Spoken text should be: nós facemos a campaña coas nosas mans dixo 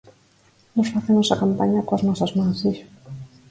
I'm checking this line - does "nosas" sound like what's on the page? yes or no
yes